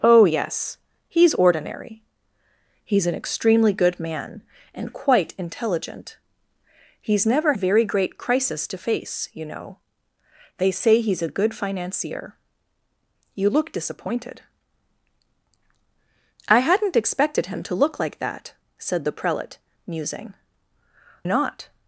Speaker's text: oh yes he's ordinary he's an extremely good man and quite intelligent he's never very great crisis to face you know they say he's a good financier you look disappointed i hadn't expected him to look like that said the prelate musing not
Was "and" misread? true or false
false